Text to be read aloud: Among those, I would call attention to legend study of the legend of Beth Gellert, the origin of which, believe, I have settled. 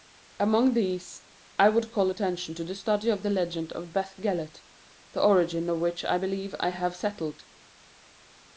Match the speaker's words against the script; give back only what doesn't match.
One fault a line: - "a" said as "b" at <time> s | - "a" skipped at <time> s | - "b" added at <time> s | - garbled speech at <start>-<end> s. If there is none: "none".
- "those" said as "these" at 0.7 s
- "legend" said as "the" at 2.6 s
- "I" added at 6.1 s